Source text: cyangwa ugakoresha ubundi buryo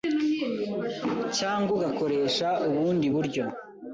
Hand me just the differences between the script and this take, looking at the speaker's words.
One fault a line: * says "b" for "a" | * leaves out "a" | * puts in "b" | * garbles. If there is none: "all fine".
all fine